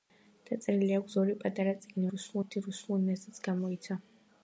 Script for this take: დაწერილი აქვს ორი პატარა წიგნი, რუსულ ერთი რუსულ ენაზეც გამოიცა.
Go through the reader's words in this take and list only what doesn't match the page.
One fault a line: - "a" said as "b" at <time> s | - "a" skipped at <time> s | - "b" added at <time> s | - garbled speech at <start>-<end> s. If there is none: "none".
none